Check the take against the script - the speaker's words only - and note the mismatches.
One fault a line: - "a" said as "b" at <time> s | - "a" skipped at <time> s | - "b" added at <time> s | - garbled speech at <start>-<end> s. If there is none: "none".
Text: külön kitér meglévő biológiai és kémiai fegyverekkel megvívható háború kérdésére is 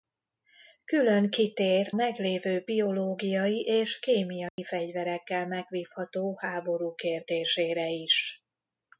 none